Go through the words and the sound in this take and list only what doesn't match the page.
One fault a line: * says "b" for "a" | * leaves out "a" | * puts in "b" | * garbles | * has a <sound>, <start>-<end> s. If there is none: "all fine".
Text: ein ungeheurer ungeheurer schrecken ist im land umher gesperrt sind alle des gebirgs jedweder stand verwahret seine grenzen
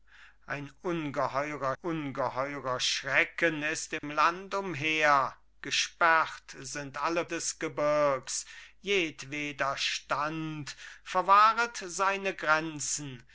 * has a dropout, 4.0-4.0 s